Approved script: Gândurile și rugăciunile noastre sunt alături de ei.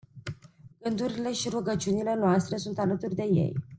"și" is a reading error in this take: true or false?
false